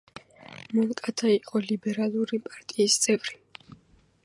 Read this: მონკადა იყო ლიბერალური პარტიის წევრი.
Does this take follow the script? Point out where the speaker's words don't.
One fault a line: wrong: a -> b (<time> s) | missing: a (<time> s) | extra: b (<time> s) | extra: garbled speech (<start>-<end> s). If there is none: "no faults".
no faults